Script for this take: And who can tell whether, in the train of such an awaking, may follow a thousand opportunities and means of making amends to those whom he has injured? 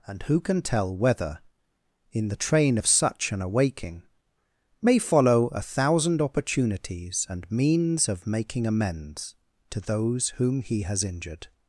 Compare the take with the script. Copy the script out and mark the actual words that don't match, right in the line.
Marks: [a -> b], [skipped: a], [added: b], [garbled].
And who can tell whether, in the train of such an awaking, may follow a thousand opportunities and means of making amends to those whom he has injured?